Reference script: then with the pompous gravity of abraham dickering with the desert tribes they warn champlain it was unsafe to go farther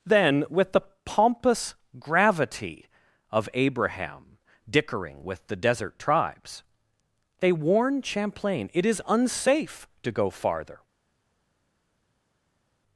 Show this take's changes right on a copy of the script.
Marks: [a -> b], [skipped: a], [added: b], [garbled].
then with the pompous gravity of abraham dickering with the desert tribes they warn champlain it [was -> is] unsafe to go farther